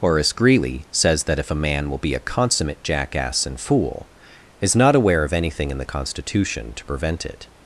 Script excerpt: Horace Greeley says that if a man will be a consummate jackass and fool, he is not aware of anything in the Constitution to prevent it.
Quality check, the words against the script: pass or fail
fail